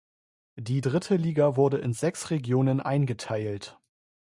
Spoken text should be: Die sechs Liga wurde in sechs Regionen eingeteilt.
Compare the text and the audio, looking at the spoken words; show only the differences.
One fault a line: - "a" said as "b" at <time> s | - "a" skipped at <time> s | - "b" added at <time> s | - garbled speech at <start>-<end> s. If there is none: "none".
- "sechs" said as "dritte" at 0.8 s